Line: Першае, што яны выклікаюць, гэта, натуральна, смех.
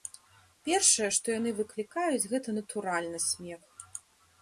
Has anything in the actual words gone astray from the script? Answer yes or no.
no